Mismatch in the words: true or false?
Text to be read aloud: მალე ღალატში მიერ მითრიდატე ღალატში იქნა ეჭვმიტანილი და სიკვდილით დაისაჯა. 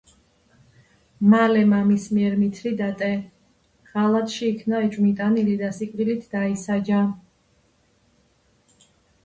true